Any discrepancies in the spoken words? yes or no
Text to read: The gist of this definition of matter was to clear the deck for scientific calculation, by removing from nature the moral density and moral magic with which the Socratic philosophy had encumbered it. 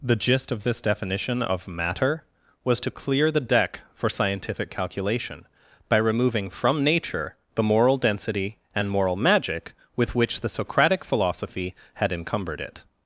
no